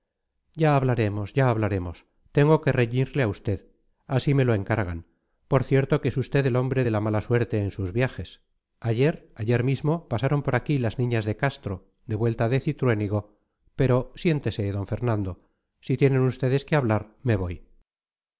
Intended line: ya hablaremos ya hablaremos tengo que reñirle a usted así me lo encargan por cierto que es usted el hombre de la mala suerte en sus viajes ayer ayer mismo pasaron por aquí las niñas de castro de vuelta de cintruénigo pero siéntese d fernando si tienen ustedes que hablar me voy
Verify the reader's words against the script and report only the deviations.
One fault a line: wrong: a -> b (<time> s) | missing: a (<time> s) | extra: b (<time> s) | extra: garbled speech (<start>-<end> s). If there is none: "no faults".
no faults